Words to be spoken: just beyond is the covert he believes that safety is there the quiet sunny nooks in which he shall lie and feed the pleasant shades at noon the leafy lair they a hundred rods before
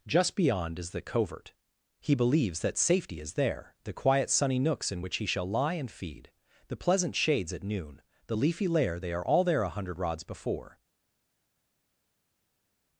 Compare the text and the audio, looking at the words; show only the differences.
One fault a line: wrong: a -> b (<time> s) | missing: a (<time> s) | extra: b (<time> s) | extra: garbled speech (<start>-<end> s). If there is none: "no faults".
extra: are all there (9.1 s)